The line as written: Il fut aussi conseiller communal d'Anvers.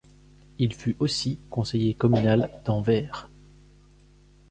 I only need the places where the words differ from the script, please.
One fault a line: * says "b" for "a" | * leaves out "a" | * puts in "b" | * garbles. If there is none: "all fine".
all fine